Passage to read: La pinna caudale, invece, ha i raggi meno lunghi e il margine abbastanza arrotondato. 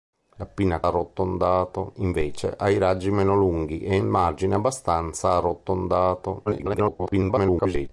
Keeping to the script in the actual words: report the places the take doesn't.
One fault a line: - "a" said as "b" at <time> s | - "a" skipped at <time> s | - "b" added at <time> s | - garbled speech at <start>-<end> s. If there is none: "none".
- "caudale" said as "arrotondato" at 0.8 s
- garbled speech at 6.5-7.9 s